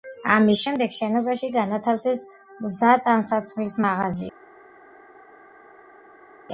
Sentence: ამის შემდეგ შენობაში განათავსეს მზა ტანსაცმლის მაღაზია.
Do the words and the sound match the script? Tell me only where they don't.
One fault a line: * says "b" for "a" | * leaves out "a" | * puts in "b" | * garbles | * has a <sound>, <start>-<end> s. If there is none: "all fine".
all fine